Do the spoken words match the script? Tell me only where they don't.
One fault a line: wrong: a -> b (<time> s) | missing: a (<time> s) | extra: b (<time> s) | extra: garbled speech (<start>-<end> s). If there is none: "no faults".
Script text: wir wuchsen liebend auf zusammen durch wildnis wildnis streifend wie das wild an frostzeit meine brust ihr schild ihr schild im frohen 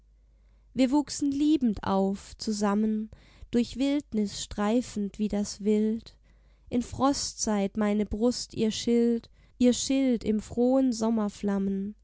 missing: wildnis (4.4 s)
wrong: an -> in (6.7 s)